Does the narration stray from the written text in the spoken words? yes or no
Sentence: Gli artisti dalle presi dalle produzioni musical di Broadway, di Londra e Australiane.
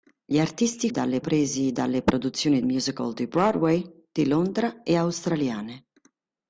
no